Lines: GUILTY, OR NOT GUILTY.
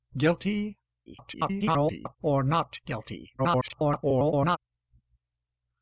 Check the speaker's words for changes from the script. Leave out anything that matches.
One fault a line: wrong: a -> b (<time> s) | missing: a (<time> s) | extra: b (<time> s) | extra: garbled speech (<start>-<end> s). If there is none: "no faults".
extra: garbled speech (1.1-2.2 s)
extra: garbled speech (3.4-4.6 s)